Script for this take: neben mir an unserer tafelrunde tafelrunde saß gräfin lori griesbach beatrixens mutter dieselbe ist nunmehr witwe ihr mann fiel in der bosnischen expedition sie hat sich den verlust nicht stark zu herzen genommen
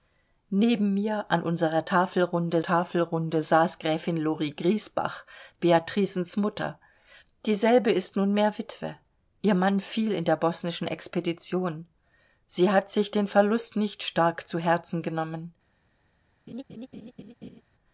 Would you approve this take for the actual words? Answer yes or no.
yes